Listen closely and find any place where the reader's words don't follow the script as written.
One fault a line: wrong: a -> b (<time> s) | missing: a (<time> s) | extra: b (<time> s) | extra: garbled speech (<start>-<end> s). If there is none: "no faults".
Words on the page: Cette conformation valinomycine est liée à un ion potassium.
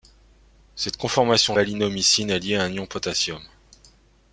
no faults